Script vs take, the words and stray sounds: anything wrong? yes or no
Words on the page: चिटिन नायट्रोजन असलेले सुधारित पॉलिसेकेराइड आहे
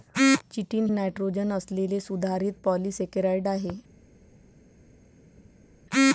no